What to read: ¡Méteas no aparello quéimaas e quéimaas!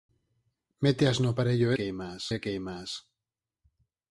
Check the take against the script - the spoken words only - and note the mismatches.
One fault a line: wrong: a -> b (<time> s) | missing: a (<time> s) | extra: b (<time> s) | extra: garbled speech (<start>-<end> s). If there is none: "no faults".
no faults